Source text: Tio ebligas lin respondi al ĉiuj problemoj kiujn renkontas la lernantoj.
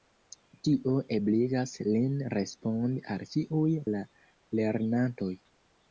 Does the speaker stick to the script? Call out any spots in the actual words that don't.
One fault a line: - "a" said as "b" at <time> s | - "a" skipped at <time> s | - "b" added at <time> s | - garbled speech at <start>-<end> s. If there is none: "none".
- "problemoj kiujn renkontas" skipped at 3.8 s